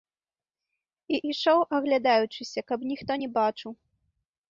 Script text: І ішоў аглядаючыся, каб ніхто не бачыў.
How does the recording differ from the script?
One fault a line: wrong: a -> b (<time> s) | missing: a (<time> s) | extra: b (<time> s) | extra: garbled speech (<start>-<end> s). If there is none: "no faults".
no faults